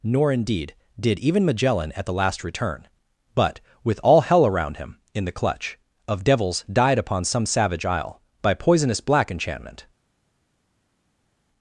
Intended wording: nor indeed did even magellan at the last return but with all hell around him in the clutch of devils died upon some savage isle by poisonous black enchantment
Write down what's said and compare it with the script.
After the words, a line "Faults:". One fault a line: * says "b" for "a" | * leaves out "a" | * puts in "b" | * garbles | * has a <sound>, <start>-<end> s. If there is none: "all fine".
nor indeed did even magellan at the last return but with all hell around him in the clutch of devils died upon some savage isle by poisonous black enchantment
Faults:
all fine